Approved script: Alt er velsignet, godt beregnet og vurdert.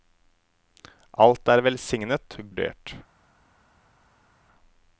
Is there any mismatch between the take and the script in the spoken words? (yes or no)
yes